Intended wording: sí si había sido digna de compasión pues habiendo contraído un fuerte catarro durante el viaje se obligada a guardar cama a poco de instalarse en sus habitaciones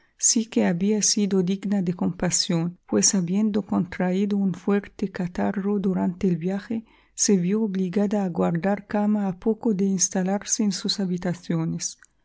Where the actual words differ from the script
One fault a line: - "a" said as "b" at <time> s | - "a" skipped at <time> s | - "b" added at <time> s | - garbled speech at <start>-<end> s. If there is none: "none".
- "si" said as "que" at 0.5 s
- "vió" added at 7.4 s